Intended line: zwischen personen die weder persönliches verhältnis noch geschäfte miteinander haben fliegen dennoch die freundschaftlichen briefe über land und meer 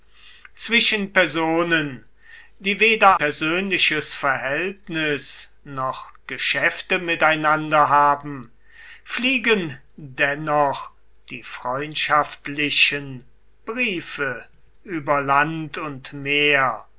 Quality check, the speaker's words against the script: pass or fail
pass